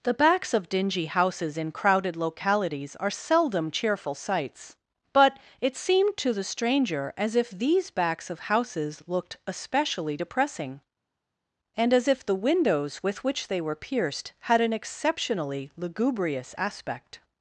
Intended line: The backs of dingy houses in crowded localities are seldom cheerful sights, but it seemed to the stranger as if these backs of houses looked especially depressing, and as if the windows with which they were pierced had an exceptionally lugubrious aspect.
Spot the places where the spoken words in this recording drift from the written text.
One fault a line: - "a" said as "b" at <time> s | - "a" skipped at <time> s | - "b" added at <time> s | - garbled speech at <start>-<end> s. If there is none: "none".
none